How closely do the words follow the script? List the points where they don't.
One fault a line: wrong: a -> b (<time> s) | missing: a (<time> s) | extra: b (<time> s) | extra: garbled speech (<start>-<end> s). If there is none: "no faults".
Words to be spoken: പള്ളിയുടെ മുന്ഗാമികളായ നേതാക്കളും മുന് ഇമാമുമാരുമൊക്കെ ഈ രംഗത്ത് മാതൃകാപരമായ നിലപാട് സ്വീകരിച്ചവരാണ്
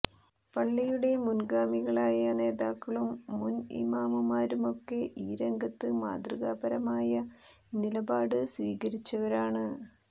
no faults